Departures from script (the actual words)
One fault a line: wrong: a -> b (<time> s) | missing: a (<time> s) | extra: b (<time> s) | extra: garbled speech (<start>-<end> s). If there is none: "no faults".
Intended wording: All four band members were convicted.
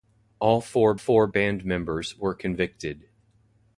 extra: four (0.9 s)